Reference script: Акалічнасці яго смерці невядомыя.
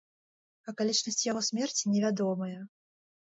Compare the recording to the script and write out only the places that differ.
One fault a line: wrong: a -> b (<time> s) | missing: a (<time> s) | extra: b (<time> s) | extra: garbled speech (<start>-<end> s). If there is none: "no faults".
no faults